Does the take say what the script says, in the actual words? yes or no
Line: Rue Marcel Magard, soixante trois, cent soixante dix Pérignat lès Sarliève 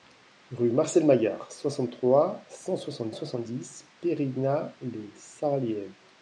no